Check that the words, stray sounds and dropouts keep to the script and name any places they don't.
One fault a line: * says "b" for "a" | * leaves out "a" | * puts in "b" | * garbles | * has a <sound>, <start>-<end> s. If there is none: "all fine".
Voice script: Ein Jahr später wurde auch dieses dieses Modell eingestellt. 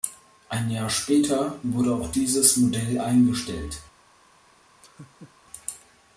* leaves out "dieses"
* has a laugh, 4.8-5.3 s